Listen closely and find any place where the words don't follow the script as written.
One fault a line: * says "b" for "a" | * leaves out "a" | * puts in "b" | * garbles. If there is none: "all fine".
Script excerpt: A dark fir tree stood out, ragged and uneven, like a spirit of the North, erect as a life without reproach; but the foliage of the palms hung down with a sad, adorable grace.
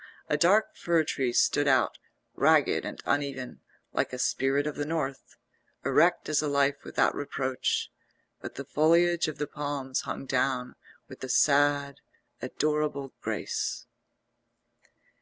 all fine